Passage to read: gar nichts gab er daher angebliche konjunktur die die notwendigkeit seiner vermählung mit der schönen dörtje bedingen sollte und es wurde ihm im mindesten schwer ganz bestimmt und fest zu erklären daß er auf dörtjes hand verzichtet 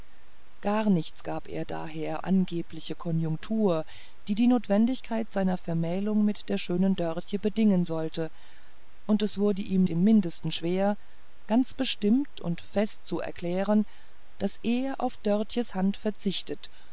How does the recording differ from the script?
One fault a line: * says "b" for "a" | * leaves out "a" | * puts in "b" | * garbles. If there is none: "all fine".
all fine